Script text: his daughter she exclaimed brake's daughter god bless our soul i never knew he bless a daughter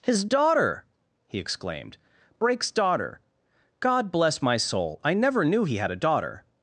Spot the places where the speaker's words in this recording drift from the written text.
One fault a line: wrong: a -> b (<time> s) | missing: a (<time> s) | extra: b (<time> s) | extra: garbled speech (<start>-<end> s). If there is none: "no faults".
wrong: she -> he (1.3 s)
wrong: our -> my (4.4 s)
wrong: bless -> had (5.7 s)